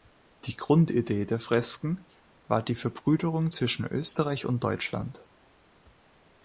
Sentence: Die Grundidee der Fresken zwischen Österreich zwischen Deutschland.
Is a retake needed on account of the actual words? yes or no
yes